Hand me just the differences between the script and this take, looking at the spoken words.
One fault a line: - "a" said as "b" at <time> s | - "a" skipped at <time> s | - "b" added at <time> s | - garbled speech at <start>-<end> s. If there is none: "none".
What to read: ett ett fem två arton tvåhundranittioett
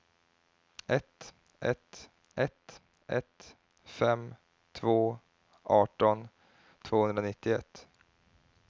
- "ett ett" added at 2.4 s